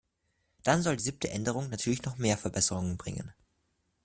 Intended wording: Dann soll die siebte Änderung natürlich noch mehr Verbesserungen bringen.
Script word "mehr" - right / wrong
right